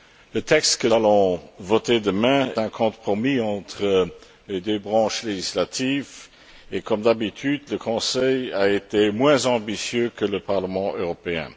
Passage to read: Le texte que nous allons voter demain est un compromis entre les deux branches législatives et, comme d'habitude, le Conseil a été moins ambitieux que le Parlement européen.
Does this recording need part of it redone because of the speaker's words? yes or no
yes